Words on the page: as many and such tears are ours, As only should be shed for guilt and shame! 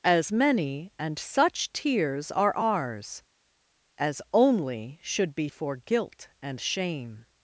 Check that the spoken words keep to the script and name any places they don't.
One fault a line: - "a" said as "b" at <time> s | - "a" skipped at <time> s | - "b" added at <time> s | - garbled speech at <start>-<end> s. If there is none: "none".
- "shed" skipped at 5.5 s